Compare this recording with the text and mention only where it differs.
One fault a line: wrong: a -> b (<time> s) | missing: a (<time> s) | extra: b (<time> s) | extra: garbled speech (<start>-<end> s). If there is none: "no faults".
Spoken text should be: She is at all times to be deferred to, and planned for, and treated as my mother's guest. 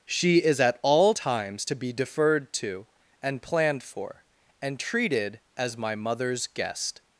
no faults